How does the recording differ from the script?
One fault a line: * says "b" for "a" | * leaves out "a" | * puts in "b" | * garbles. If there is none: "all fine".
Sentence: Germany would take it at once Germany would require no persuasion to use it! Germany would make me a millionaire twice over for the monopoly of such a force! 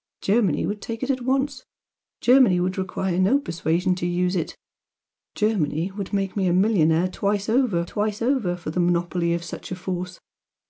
* puts in "twice over"